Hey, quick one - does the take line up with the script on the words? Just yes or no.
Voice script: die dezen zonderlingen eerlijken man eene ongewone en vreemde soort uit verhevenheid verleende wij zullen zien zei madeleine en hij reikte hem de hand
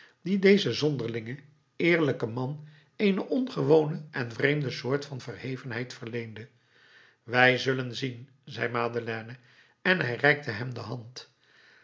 no